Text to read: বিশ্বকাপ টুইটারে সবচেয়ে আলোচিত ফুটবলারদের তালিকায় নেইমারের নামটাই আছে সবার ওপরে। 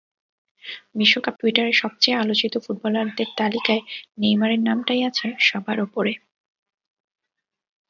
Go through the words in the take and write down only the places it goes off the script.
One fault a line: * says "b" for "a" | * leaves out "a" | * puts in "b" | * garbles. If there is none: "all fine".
all fine